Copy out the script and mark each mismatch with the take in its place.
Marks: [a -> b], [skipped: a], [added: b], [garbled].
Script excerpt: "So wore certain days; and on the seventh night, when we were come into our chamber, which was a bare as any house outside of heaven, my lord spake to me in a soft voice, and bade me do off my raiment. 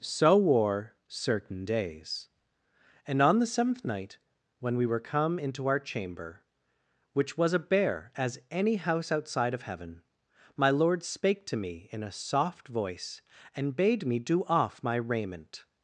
"So wore certain days; and on the seventh night, when we were come into our chamber, which was a bare as any house outside of heaven, my lord spake to me in a soft voice, and bade me do off my raiment.